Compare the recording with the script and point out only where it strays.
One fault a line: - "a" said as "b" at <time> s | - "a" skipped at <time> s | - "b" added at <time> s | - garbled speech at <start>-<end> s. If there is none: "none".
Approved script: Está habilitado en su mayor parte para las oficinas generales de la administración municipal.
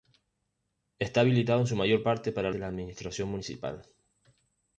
- "las oficinas generales" skipped at 2.5 s